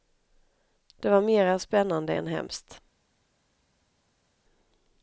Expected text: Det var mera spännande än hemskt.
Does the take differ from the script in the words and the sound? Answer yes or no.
no